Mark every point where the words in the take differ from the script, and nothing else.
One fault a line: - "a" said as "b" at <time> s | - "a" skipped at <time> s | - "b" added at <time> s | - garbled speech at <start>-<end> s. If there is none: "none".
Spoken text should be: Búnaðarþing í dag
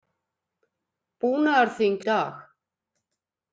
none